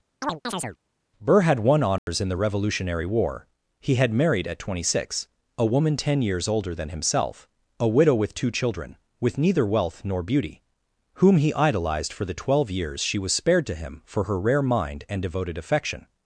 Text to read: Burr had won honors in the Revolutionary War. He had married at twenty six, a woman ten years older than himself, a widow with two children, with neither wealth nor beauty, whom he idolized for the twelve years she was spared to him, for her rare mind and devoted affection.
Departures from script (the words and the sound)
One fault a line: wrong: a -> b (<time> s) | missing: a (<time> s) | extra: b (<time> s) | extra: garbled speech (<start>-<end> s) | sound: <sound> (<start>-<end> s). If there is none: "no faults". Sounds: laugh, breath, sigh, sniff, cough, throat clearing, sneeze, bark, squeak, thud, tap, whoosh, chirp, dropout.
sound: chirp (0.2-0.8 s)
sound: dropout (2.0-2.1 s)